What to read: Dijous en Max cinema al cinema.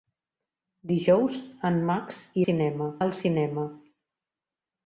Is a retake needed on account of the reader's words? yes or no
no